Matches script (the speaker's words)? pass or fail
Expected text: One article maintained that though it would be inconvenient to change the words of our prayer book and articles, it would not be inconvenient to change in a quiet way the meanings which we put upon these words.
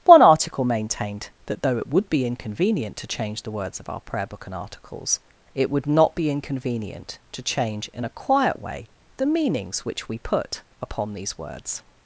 pass